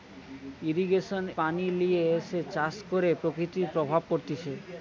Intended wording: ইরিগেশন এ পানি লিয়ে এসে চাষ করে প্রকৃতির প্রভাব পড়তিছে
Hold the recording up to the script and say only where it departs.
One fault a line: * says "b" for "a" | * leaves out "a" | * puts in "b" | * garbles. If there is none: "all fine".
* leaves out "এ"